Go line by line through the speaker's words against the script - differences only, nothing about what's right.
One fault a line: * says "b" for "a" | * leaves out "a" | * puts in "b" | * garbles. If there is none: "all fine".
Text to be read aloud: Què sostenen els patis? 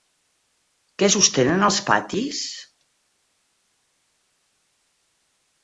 all fine